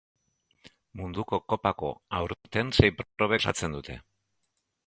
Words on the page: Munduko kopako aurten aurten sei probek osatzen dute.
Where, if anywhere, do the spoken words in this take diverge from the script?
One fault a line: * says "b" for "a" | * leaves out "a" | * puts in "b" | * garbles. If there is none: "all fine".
* leaves out "aurten"